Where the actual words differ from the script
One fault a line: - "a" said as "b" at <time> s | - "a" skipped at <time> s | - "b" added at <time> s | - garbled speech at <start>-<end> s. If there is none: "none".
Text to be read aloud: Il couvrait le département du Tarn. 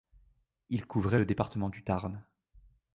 none